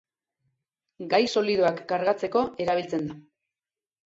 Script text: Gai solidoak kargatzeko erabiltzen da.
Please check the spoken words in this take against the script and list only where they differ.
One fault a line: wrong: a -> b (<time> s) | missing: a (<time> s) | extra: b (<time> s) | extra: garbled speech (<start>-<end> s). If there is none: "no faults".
no faults